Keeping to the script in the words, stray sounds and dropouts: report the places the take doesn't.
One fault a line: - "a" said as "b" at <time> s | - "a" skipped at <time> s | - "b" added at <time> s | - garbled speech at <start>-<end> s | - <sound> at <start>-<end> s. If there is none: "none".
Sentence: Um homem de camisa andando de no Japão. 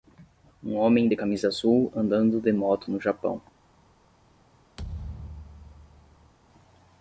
- "azul" added at 1.5 s
- "moto" added at 2.5 s
- thud at 4.8-6.3 s